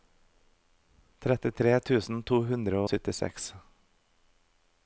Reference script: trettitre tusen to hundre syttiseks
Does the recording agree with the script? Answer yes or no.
yes